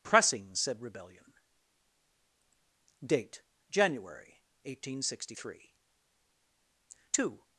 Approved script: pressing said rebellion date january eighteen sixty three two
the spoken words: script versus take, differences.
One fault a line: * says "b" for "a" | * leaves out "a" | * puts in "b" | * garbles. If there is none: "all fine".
all fine